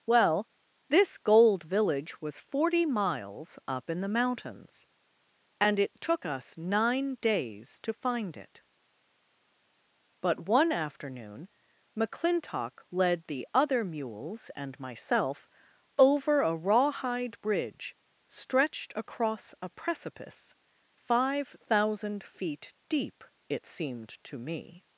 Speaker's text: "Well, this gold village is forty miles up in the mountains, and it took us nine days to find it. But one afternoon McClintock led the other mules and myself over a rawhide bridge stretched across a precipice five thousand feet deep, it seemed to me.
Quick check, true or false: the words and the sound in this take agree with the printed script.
false